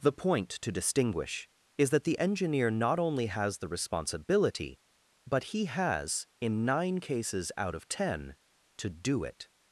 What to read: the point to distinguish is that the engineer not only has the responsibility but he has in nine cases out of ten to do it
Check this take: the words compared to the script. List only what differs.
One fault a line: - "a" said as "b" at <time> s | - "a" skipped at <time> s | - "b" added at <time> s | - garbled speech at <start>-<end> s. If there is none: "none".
none